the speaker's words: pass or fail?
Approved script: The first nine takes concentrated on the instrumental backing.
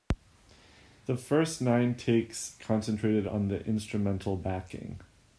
pass